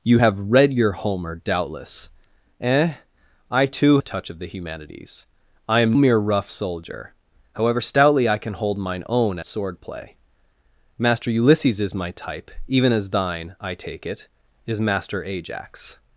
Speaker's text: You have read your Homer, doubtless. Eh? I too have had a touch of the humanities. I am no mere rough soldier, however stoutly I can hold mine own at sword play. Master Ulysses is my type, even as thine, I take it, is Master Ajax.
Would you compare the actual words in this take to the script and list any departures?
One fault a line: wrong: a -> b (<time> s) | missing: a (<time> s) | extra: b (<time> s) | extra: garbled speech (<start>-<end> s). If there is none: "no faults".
missing: have had (4.0 s)
missing: no (5.9 s)
missing: at (9.4 s)